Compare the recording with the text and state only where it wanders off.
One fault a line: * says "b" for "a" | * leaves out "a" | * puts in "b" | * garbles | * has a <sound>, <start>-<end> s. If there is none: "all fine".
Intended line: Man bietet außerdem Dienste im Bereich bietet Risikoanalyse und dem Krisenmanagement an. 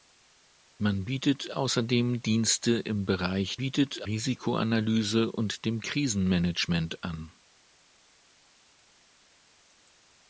all fine